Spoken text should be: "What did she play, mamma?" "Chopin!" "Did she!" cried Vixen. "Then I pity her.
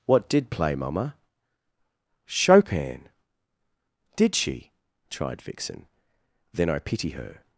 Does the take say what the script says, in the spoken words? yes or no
no